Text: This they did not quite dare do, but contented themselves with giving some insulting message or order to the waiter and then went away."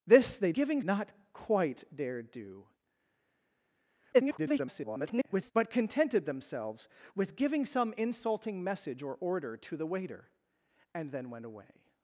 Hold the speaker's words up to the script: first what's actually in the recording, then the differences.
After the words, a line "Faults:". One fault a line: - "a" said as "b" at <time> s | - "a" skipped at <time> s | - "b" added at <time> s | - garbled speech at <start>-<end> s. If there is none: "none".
This they giving not quite dare do, [garbled] but contented themselves with giving some insulting message or order to the waiter and then went away."
Faults:
- "did" said as "giving" at 0.5 s
- garbled speech at 4.1-5.5 s